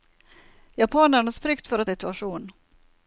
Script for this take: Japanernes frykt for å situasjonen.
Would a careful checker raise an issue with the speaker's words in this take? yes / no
no